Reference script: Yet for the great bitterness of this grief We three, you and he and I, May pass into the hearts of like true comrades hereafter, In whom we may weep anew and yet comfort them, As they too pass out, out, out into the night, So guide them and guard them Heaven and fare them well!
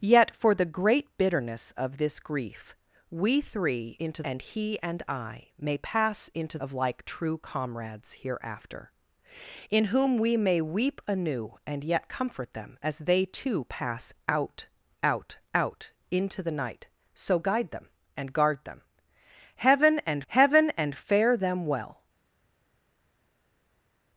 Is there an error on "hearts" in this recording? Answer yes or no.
yes